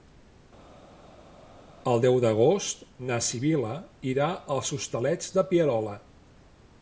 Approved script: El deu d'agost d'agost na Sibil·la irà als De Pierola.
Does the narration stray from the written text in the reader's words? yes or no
yes